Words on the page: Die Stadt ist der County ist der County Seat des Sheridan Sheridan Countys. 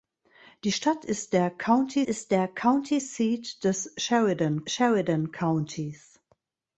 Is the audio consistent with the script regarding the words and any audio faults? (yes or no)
yes